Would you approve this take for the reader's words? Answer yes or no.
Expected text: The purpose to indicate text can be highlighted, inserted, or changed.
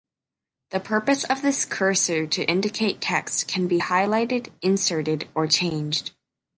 no